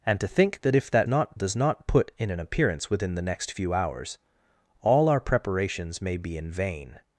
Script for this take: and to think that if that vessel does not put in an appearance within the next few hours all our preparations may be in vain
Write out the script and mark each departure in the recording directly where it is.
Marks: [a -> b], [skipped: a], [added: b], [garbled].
and to think that if that [vessel -> not] does not put in an appearance within the next few hours all our preparations may be in vain